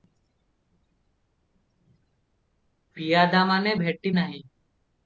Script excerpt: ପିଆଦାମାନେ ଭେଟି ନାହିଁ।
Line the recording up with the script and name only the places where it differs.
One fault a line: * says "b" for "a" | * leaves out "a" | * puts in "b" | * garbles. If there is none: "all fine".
all fine